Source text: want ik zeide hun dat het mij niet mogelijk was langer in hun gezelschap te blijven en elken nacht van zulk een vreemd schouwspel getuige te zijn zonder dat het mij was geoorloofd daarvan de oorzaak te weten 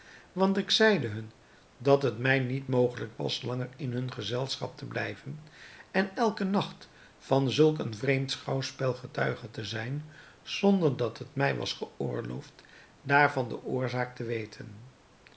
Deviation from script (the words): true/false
false